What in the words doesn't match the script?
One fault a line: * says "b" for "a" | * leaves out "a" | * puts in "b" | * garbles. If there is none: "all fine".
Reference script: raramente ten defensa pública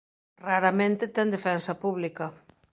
all fine